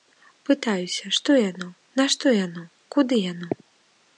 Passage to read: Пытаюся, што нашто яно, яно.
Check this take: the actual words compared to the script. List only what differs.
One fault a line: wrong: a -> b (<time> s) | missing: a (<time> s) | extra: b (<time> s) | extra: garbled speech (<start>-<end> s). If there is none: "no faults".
extra: яно (1.4 s)
extra: куды (3.0 s)